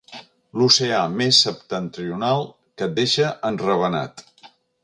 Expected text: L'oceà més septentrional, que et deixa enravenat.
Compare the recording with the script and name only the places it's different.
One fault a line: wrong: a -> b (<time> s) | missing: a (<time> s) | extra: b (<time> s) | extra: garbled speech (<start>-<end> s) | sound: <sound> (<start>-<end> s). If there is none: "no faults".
no faults